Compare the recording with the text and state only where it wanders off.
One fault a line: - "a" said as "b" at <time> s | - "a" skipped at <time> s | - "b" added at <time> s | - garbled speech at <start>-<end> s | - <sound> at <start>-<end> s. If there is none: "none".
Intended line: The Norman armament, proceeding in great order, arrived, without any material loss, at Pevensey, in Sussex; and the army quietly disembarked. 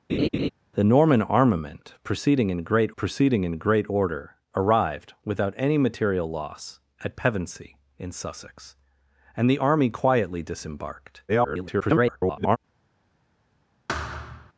- laugh at 0.1-0.5 s
- "proceeding in great" added at 2.9 s
- garbled speech at 11.3-12.6 s
- thud at 13.9-14.5 s